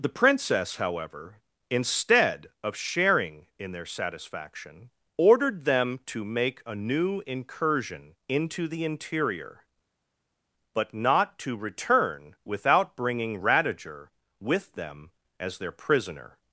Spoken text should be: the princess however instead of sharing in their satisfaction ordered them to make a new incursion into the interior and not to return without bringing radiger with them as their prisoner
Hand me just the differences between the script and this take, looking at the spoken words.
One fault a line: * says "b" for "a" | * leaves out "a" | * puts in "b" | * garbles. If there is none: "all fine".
* says "but" for "and"